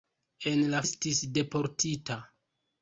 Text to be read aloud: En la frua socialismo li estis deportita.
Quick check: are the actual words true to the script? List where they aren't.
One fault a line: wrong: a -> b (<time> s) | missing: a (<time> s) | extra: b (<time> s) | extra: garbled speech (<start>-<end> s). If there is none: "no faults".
missing: frua socialismo li (0.8 s)